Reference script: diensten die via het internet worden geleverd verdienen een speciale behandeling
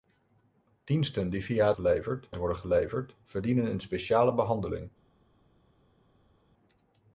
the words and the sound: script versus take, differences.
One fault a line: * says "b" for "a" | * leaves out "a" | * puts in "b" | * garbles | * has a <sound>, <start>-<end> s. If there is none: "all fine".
* says "geleverd" for "internet"